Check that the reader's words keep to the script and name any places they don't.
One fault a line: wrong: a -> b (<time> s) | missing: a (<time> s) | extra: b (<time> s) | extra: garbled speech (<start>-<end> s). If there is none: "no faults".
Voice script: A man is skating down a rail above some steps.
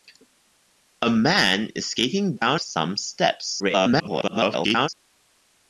missing: a rail above (2.6 s)
extra: garbled speech (3.6-4.9 s)